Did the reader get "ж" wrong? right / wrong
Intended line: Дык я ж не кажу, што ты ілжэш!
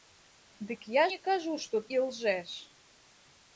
wrong